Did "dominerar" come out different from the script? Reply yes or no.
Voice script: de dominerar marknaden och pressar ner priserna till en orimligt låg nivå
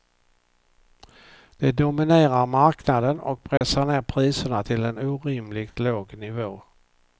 no